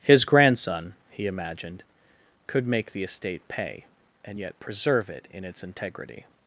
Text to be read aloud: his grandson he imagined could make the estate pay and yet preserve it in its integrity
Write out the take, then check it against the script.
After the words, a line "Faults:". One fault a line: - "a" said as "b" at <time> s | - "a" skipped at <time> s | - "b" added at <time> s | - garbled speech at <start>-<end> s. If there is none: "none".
his grandson he imagined could make the estate pay and yet preserve it in its integrity
Faults:
none